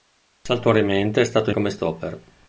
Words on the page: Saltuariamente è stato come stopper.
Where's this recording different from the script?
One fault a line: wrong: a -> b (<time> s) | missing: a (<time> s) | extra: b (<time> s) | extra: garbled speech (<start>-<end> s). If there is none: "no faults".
no faults